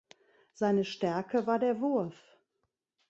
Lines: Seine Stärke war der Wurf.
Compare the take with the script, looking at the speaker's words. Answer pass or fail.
pass